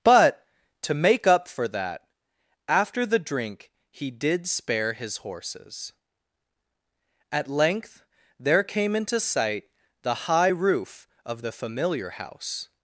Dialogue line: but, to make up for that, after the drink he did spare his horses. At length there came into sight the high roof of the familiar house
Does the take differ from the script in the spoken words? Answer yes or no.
no